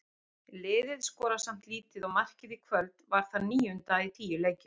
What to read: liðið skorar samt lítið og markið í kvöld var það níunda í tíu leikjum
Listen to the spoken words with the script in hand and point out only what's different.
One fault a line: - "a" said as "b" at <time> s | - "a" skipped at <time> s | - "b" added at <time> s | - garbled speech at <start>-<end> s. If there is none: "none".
none